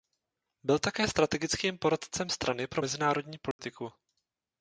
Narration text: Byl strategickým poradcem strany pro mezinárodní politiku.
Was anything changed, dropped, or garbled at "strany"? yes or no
no